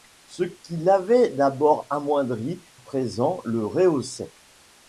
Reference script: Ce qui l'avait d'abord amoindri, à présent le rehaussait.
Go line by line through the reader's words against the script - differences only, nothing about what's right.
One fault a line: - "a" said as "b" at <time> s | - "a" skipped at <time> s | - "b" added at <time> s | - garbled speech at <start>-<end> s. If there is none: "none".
- "à" skipped at 2.6 s